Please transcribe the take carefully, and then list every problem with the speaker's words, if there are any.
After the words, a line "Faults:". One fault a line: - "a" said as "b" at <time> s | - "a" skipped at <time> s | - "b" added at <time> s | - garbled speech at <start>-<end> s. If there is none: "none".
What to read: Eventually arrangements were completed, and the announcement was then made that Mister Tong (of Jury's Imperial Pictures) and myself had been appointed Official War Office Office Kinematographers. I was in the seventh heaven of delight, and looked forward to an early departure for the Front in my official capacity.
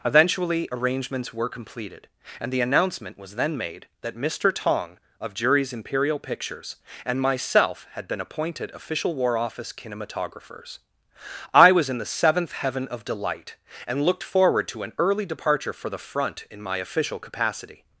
Eventually arrangements were completed, and the announcement was then made that Mister Tong (of Jury's Imperial Pictures) and myself had been appointed Official War Office Kinematographers. I was in the seventh heaven of delight, and looked forward to an early departure for the Front in my official capacity.
Faults:
- "Office" skipped at 9.7 s